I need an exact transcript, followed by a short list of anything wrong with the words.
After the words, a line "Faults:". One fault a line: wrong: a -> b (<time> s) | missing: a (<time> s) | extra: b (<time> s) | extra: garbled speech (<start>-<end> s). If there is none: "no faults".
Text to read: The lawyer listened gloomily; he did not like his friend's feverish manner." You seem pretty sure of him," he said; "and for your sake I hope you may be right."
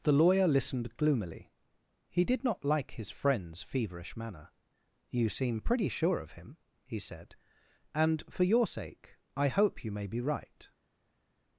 The lawyer listened gloomily; he did not like his friend's feverish manner." You seem pretty sure of him," he said; "and for your sake I hope you may be right."
Faults:
no faults